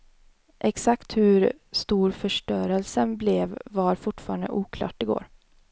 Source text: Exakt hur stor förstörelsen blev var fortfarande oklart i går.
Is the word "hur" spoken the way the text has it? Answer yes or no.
yes